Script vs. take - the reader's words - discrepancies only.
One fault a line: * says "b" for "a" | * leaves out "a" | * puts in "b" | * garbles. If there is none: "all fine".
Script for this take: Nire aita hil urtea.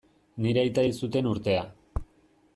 * puts in "zuten"